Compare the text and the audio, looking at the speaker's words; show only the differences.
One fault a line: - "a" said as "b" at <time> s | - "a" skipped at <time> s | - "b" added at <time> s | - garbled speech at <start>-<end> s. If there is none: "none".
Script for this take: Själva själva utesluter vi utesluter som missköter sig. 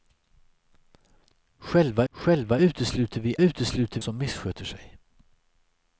none